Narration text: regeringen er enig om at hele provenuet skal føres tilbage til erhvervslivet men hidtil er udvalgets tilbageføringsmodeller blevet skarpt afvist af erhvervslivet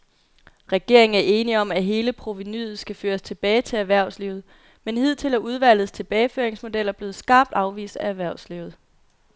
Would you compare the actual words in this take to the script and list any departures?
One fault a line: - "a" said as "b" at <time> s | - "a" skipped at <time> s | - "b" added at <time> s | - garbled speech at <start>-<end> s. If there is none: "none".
none